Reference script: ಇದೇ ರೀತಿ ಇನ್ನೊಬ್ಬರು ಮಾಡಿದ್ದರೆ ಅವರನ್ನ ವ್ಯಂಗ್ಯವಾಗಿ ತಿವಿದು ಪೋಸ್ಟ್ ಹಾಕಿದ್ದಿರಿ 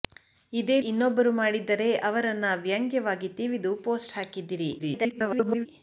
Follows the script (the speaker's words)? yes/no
no